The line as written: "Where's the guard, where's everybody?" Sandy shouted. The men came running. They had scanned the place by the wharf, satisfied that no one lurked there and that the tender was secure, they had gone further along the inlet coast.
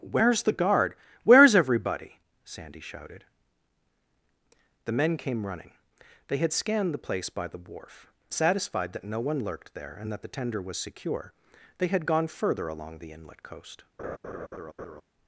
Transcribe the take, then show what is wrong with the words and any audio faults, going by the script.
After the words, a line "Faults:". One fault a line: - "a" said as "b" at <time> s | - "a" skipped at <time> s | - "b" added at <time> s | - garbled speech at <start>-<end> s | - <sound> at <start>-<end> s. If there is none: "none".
"Where's the guard, where's everybody?" Sandy shouted. The men came running. They had scanned the place by the wharf, satisfied that no one lurked there and that the tender was secure, they had gone further along the inlet coast.
Faults:
- laugh at 14.0-15.0 s